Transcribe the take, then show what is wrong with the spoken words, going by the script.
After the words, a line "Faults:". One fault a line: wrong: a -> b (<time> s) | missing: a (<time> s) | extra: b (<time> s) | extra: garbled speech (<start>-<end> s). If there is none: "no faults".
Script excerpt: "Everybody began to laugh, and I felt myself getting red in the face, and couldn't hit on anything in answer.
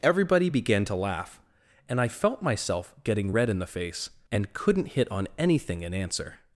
"Everybody began to laugh, and I felt myself getting red in the face, and couldn't hit on anything in answer.
Faults:
no faults